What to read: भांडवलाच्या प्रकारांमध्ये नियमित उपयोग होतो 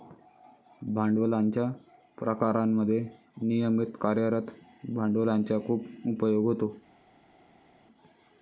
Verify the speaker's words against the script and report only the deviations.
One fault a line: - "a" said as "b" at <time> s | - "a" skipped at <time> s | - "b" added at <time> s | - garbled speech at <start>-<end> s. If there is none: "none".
- "कार्यरत भांडवलाचा खूप" added at 4.0 s